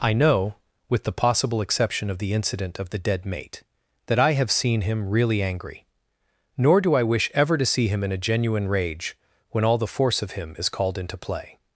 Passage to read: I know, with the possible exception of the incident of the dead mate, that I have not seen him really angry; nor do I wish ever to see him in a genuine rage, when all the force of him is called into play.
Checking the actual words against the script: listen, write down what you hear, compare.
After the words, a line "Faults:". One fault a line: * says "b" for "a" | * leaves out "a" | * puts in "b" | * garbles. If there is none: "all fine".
I know, with the possible exception of the incident of the dead mate, that I have seen him really angry; nor do I wish ever to see him in a genuine rage, when all the force of him is called into play.
Faults:
* leaves out "not"